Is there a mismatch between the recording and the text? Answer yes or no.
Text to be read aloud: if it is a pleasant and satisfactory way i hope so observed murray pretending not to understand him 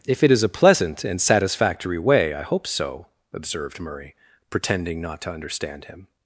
no